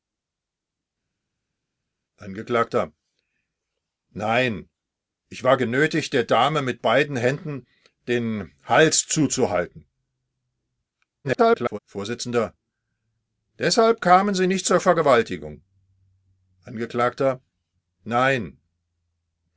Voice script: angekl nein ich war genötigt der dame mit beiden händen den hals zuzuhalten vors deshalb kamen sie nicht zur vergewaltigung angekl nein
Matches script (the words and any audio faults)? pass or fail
fail